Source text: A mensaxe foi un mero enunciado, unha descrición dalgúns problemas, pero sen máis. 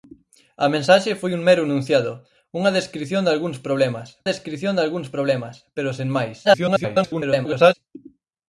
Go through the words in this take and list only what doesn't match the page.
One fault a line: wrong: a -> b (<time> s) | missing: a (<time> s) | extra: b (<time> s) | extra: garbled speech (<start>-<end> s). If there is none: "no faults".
extra: descrición dalgúns problemas (4.3 s)
extra: garbled speech (6.4-7.7 s)